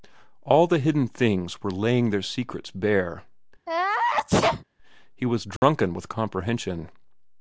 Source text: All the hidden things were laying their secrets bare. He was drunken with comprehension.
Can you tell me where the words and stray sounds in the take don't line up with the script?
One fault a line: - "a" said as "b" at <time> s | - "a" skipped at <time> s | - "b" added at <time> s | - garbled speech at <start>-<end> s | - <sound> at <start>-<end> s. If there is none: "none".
- sneeze at 3.7-4.6 s
- dropout at 5.6-5.6 s